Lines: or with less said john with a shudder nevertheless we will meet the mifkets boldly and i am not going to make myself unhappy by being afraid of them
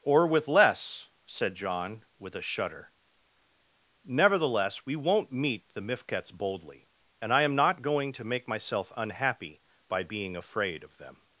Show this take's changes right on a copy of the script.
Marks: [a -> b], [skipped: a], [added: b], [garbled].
or with less said john with a shudder nevertheless we [will -> won't] meet the mifkets boldly and i am not going to make myself unhappy by being afraid of them